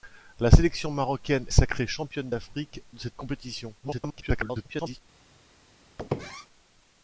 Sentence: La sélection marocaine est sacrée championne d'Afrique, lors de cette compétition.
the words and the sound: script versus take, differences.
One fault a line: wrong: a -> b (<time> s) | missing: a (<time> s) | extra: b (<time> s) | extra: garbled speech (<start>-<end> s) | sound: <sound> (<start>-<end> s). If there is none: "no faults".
missing: est (1.4 s)
missing: lors (2.8 s)
extra: garbled speech (3.8-5.0 s)
sound: squeak (6.0-6.5 s)